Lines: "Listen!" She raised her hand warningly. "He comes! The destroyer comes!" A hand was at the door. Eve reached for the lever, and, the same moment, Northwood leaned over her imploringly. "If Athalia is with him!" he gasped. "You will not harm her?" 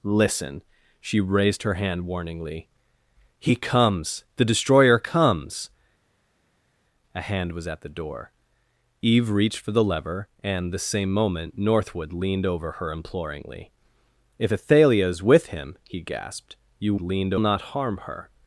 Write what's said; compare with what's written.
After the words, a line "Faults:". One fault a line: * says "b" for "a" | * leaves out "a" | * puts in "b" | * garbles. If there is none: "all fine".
"Listen!" She raised her hand warningly. "He comes! The destroyer comes!" A hand was at the door. Eve reached for the lever, and, the same moment, Northwood leaned over her imploringly. "If Athalia is with him!" he gasped. "You leaned not harm her?"
Faults:
* says "leaned" for "will"